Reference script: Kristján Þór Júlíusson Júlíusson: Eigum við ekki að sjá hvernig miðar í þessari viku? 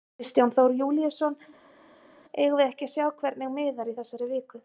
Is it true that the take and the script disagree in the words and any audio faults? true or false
true